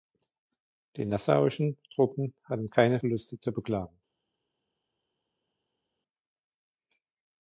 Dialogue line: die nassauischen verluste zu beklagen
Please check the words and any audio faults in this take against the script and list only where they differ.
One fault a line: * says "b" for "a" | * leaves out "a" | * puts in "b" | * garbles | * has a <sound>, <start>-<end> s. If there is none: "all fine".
* puts in "truppen hatten keine"